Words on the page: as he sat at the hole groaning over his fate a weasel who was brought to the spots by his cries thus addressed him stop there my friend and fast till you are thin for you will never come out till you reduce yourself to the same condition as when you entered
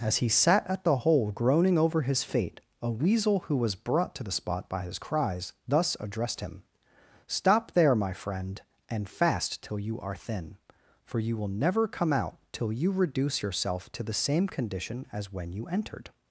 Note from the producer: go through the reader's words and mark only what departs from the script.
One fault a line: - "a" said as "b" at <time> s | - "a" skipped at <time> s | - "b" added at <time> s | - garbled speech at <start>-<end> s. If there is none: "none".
- "spots" said as "spot" at 4.3 s